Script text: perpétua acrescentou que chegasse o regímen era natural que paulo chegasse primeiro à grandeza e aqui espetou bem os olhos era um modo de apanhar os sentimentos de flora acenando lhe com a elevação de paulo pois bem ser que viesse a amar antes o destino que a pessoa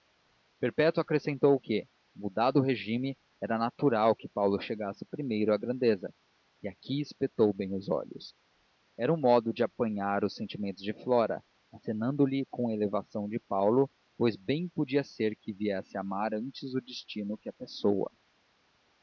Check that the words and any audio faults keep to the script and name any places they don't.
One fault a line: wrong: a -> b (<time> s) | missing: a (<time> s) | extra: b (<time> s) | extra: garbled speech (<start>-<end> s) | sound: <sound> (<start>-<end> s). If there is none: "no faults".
wrong: chegasse -> mudado (2.1 s)
extra: podia (14.7 s)